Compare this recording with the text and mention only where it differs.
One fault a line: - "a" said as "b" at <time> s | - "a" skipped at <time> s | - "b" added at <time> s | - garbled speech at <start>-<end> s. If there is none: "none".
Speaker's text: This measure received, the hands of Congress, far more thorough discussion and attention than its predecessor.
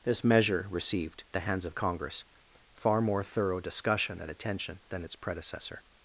none